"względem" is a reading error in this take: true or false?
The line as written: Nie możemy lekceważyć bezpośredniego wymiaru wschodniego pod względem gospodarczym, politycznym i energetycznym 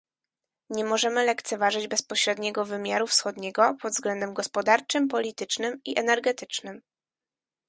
false